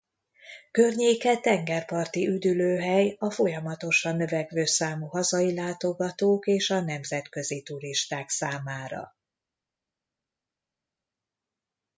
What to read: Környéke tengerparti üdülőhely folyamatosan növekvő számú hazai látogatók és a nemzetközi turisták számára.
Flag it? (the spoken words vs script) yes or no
yes